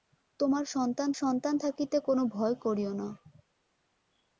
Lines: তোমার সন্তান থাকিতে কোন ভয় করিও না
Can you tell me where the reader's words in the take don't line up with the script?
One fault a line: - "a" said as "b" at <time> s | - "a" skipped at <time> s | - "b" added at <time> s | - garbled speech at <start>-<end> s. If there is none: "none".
- "সন্তান" added at 1.1 s